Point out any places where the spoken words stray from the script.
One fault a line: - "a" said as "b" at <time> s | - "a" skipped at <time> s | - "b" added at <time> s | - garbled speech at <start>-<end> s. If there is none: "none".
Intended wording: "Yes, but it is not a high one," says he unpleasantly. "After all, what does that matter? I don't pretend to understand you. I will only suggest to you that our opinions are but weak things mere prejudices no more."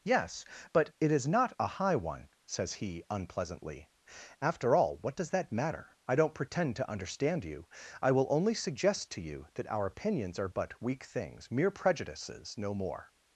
none